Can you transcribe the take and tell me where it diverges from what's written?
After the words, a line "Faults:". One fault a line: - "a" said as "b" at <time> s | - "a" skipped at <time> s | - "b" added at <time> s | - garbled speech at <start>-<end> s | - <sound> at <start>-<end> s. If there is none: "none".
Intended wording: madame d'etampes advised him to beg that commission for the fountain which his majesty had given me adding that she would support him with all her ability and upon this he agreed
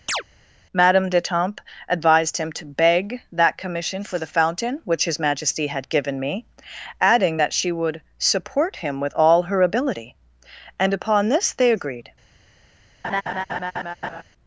madame d'etampes advised him to beg that commission for the fountain which his majesty had given me adding that she would support him with all her ability and upon this they agreed
Faults:
- chirp at 0.1-0.2 s
- "he" said as "they" at 11.5 s
- laugh at 13.0-14.2 s